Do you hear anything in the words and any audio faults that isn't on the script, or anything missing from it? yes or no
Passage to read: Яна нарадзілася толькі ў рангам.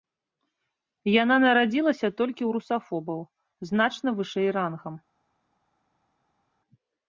yes